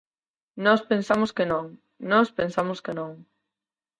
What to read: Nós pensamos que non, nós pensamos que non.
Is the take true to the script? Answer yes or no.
yes